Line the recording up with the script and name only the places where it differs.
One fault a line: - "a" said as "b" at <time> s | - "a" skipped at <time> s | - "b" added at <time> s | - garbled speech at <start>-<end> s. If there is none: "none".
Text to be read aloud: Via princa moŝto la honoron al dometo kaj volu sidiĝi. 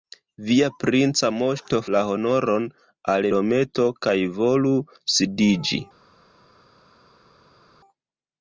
none